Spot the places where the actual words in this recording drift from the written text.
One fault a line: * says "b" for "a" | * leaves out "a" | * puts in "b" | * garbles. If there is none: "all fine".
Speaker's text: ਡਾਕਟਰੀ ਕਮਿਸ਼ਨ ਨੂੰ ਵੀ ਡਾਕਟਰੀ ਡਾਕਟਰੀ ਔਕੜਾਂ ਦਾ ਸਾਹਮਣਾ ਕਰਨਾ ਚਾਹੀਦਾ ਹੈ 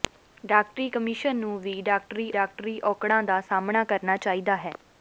all fine